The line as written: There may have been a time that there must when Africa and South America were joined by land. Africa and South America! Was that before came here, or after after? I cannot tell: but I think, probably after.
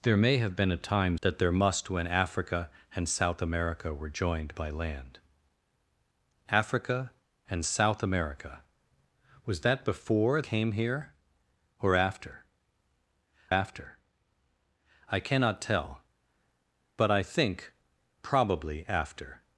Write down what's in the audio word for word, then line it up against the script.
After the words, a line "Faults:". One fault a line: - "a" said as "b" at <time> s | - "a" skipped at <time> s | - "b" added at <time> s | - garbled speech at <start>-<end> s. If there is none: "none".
There may have been a time that there must when Africa and South America were joined by land. Africa and South America! Was that before came here, or after after? I cannot tell: but I think, probably after.
Faults:
none